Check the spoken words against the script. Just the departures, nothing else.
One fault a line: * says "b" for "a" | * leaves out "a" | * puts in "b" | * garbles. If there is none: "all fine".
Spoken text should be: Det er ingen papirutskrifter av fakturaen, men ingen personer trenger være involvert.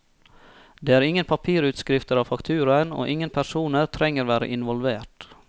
* says "og" for "men"